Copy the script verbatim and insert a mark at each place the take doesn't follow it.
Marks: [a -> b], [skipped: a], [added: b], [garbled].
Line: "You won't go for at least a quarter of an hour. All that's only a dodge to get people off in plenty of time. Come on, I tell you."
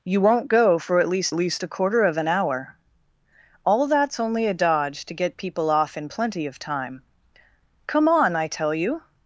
"You won't go for at least [added: least] a quarter of an hour. All that's only a dodge to get people off in plenty of time. Come on, I tell you."